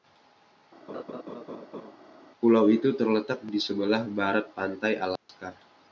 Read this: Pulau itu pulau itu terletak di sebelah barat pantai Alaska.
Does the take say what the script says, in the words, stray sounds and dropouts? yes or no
no